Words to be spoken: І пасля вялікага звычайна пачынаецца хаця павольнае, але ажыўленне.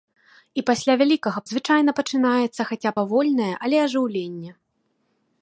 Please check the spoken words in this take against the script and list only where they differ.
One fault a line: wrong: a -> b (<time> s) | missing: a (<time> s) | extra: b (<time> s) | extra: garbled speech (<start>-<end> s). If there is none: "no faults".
no faults